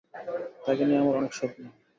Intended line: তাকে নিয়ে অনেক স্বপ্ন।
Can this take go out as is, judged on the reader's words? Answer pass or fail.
fail